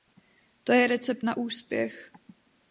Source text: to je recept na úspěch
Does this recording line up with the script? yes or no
yes